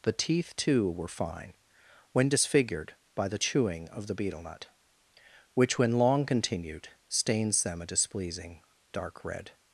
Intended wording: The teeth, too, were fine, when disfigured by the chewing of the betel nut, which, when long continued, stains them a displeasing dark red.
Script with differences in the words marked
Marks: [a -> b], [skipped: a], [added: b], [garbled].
The teeth, too, were fine, when disfigured by the chewing of the betel nut, which, when long continued, stains them a displeasing dark red.